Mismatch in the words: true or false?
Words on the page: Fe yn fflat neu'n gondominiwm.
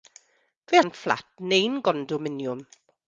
false